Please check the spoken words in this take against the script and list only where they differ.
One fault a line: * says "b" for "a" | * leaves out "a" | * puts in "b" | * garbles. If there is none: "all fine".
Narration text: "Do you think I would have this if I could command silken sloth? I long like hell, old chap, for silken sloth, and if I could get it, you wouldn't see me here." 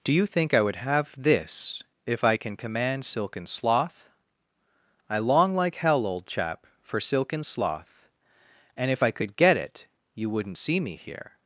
* says "can" for "could"